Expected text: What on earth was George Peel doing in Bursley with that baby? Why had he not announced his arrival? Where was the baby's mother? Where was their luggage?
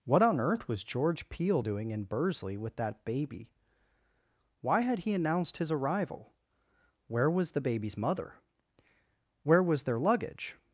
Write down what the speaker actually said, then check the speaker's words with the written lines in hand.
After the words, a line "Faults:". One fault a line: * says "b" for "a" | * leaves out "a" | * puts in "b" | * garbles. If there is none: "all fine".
What on earth was George Peel doing in Bursley with that baby? Why had he announced his arrival? Where was the baby's mother? Where was their luggage?
Faults:
* leaves out "not"